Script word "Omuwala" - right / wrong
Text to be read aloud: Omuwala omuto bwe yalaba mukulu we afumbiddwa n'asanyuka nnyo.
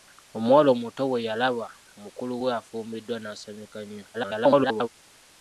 right